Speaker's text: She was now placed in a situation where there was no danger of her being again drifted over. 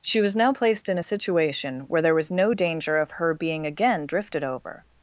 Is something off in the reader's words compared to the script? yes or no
no